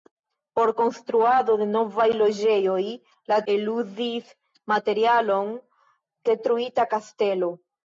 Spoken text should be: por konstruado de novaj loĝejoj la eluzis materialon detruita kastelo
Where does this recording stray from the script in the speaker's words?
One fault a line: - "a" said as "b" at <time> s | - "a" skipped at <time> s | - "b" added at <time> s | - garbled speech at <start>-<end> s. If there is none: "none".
none